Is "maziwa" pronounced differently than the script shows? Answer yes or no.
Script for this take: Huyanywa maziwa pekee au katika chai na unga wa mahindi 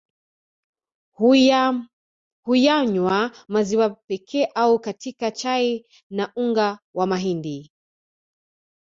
no